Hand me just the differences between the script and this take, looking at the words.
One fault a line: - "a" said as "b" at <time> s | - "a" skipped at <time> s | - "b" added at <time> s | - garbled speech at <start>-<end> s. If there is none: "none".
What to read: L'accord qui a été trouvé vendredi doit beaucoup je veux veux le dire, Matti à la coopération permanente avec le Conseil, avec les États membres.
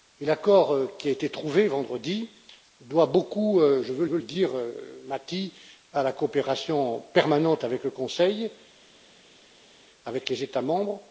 none